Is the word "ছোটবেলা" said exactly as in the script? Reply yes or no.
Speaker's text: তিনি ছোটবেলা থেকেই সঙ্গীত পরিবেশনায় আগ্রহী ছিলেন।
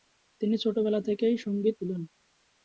yes